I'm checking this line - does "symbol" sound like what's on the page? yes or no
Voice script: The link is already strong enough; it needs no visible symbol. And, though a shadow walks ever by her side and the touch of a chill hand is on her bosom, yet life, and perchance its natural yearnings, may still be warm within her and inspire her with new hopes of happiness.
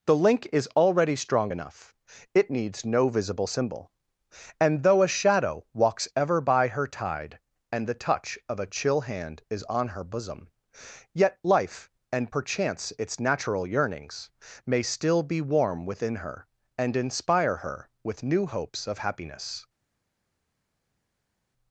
yes